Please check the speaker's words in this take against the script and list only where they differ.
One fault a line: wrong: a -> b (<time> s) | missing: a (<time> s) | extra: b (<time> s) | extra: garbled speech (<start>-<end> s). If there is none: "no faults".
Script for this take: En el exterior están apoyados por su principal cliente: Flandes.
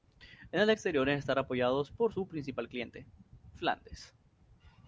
no faults